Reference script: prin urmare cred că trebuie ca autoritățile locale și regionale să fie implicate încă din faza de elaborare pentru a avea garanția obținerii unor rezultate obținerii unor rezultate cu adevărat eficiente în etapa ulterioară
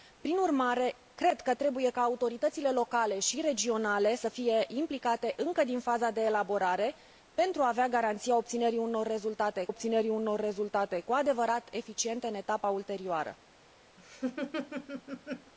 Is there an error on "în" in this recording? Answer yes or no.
no